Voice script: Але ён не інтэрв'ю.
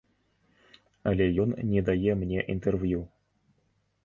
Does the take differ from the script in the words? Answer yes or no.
yes